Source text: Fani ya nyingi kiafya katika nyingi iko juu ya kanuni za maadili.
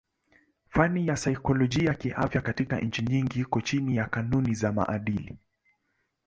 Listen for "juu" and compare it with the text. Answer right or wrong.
wrong